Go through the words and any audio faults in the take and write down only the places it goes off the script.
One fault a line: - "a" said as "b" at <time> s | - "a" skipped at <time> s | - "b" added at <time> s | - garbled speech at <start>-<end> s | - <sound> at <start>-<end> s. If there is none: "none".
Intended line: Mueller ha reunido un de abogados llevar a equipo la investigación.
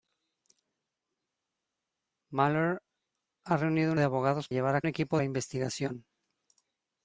none